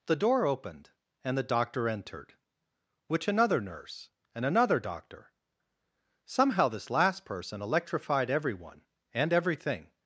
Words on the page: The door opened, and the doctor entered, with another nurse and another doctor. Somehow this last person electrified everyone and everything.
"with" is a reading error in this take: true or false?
true